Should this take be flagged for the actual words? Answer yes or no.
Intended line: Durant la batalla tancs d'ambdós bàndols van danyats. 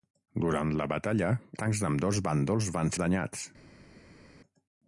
no